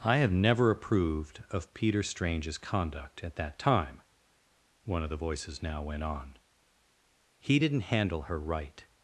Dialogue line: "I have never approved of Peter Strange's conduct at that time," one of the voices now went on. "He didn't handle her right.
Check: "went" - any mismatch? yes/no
no